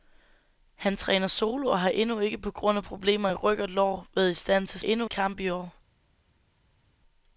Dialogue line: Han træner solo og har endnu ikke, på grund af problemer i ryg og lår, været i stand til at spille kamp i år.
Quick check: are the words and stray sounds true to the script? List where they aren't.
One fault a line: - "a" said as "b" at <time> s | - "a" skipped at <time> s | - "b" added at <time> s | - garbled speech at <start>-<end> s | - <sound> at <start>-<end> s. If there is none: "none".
- "spille" said as "endnu" at 4.8 s